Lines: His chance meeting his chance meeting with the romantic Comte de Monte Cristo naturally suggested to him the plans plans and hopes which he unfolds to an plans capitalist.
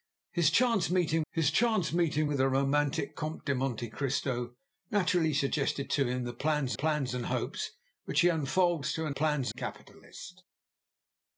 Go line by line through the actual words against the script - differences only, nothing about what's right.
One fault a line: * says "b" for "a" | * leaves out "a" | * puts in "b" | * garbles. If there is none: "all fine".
all fine